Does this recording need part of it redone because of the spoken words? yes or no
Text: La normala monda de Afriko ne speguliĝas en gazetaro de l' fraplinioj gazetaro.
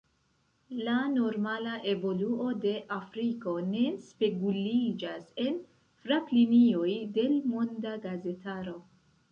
yes